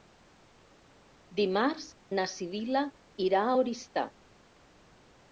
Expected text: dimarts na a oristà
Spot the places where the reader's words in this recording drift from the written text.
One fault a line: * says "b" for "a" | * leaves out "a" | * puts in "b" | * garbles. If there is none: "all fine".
* puts in "sibil·la irà"